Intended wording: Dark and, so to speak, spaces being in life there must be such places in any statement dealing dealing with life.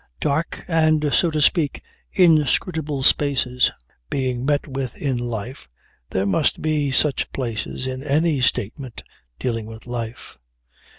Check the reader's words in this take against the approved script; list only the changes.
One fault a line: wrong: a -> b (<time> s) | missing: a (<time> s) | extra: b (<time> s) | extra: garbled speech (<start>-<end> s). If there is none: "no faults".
extra: inscrutable (2.1 s)
extra: met with (4.5 s)
missing: dealing (9.7 s)